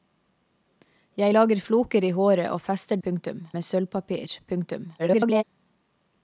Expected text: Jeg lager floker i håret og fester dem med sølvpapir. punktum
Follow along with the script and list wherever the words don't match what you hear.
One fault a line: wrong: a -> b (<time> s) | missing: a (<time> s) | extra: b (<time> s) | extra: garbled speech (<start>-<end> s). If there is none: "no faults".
wrong: dem -> punktum (3.0 s)
extra: garbled speech (5.0-5.4 s)